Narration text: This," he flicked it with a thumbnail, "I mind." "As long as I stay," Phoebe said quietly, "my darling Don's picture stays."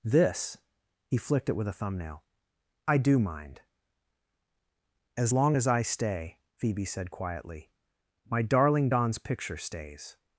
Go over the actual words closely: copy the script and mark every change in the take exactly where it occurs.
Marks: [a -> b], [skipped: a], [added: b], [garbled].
This," he flicked it with a thumbnail, "I [added: do] mind." "As long as I stay," Phoebe said quietly, "my darling Don's picture stays."